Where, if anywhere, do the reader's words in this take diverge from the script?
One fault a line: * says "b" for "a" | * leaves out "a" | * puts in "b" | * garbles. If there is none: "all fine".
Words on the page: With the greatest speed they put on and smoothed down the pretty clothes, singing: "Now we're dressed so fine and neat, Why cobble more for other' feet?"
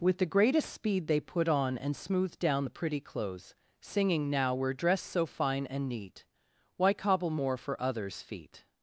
* says "others" for "other"